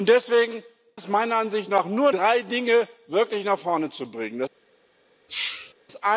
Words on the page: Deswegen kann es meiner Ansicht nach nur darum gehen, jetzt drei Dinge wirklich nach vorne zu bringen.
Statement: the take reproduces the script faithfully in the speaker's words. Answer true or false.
false